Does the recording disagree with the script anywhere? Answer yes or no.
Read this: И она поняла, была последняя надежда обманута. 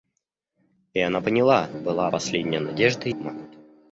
no